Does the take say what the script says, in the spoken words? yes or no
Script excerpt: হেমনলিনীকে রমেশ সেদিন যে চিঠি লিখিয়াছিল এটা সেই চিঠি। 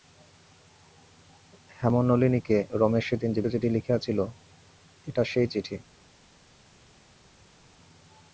yes